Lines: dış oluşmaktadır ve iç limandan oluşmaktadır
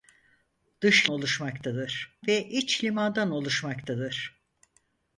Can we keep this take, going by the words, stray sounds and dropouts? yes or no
yes